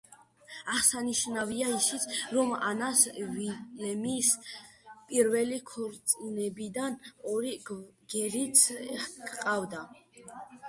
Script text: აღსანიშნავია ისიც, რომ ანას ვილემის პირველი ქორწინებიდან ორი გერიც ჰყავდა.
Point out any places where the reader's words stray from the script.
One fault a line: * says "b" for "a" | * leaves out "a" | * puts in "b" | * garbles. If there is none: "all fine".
all fine